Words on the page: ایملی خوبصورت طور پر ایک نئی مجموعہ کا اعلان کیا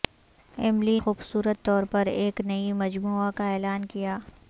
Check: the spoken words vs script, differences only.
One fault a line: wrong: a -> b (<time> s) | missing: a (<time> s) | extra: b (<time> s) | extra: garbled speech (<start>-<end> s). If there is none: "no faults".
no faults